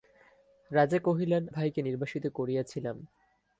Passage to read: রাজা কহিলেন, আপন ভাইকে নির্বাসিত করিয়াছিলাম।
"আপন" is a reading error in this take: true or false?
true